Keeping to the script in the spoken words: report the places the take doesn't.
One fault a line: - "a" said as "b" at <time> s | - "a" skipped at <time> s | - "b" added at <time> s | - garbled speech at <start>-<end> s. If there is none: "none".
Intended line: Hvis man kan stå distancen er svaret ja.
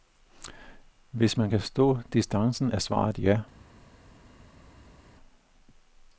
none